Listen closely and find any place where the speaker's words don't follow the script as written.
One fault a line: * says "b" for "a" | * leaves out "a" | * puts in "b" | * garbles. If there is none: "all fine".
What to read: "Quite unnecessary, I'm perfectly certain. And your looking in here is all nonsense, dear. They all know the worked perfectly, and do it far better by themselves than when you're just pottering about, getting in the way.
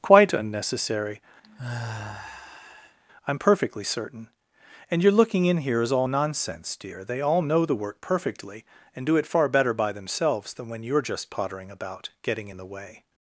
* says "work" for "worked"